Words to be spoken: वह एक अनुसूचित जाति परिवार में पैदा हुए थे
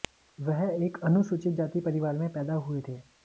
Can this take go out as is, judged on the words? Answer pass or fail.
pass